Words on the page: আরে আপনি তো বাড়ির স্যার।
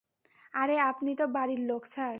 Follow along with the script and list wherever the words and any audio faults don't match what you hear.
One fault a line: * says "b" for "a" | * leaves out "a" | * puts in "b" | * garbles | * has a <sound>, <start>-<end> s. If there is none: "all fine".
* puts in "লোক"